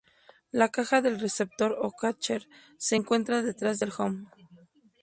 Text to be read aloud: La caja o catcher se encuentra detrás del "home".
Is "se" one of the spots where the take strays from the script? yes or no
no